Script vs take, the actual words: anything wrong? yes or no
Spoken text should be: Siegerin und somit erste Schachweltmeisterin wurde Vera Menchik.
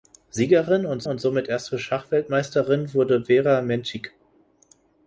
yes